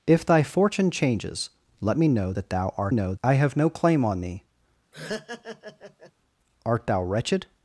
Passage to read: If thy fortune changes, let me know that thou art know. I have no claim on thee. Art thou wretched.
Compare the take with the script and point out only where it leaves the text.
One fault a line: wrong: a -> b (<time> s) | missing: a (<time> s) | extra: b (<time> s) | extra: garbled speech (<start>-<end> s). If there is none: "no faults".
no faults